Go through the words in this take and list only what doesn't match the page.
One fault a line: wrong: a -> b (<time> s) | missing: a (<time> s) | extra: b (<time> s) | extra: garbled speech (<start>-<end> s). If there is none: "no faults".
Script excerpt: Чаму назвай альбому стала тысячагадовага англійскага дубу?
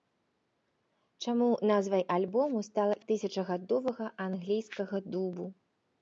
no faults